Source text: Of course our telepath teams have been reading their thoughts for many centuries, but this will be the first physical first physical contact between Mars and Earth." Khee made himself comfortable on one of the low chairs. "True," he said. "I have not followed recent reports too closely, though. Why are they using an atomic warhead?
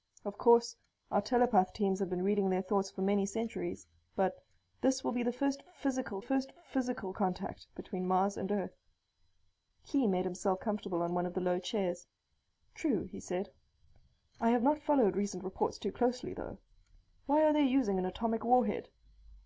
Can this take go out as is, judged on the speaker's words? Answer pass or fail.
pass